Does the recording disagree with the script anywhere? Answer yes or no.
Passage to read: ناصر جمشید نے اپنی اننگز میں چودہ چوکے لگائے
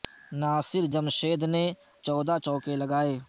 yes